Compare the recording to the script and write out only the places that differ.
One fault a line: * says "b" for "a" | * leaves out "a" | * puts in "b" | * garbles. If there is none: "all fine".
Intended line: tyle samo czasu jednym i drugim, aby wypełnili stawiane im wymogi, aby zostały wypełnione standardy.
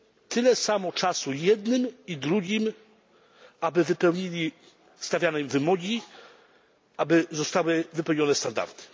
all fine